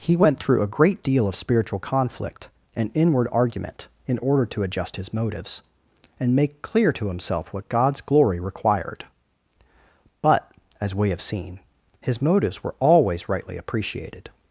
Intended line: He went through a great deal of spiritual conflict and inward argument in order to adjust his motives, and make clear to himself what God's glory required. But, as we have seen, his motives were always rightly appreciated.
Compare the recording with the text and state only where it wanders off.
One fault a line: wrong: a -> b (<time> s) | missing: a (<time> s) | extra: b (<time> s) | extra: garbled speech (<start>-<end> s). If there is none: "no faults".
no faults